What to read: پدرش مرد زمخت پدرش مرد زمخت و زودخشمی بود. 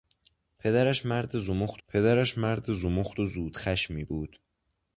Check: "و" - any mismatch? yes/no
no